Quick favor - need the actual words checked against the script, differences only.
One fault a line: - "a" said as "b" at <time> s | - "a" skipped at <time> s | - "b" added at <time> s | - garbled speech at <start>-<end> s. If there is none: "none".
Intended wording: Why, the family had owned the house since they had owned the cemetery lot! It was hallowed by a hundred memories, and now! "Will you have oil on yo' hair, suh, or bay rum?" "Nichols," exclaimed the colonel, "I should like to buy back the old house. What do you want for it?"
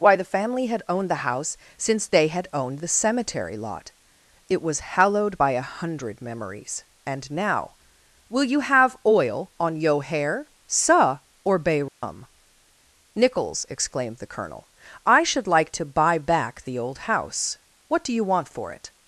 none